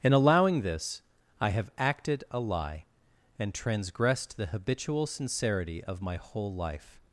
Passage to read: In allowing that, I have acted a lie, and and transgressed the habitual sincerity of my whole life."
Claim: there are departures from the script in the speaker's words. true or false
true